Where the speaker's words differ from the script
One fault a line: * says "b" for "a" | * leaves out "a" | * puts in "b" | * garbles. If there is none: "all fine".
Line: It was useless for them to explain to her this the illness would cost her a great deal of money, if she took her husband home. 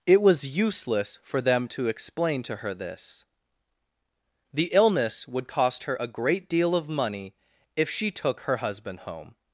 all fine